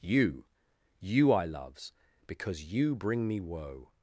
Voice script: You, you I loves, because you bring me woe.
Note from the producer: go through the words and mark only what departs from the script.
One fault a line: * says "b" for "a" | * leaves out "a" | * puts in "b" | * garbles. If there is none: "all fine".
all fine